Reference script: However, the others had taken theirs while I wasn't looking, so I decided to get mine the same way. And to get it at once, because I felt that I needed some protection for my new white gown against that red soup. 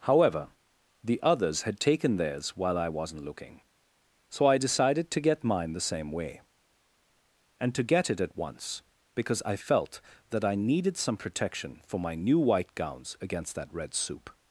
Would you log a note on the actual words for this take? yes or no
yes